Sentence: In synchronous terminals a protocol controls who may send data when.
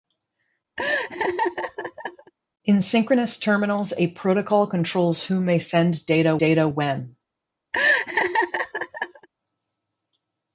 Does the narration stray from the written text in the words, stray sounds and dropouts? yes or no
yes